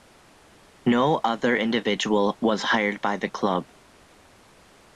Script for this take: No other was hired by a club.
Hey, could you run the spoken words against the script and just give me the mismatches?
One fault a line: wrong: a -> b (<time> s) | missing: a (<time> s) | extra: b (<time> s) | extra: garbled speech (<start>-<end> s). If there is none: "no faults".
extra: individual (1.6 s)
wrong: a -> the (3.2 s)